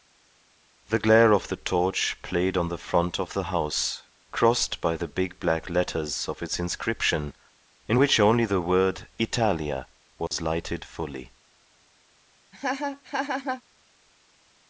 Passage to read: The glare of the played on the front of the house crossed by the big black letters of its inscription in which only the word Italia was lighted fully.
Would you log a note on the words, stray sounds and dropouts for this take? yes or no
yes